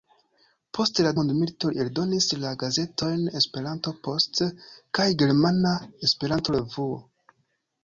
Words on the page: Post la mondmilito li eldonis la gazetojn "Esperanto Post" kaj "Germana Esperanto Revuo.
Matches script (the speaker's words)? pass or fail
pass